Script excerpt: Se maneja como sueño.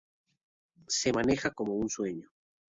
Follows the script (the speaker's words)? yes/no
no